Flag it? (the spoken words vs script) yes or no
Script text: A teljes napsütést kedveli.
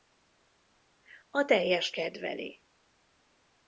yes